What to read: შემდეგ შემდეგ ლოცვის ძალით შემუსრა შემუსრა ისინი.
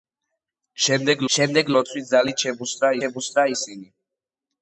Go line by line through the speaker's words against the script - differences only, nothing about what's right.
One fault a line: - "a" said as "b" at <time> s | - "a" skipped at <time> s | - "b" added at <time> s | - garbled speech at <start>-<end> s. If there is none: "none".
none